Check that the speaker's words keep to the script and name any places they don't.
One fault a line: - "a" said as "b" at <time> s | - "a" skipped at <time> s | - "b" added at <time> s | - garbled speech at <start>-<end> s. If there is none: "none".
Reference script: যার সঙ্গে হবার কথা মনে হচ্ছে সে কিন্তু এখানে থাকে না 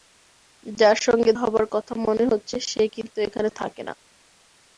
none